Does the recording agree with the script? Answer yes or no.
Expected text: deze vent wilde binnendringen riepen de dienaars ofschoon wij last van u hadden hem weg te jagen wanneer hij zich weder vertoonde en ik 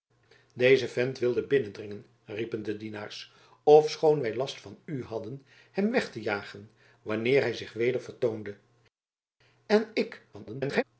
no